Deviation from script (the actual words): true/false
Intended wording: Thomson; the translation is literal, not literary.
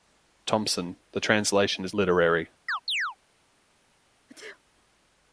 true